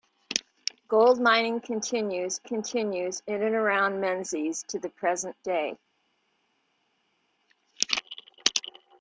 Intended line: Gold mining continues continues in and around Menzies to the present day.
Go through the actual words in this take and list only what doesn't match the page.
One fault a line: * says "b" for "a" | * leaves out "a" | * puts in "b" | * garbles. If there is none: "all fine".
all fine